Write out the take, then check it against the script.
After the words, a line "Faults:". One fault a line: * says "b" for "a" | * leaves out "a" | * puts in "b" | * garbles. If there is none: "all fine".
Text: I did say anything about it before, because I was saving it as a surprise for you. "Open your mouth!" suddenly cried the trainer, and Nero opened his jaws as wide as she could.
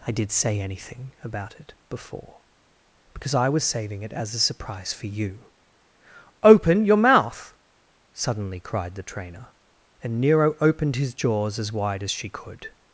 I did say anything about it before, because I was saving it as a surprise for you. "Open your mouth!" suddenly cried the trainer, and Nero opened his jaws as wide as she could.
Faults:
all fine